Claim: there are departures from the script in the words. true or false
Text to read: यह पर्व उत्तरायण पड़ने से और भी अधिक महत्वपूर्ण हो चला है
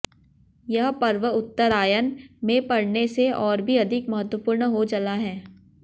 true